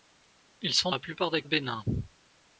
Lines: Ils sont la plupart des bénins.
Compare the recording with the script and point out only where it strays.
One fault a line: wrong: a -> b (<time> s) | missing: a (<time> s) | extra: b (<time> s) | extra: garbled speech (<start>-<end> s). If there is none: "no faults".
no faults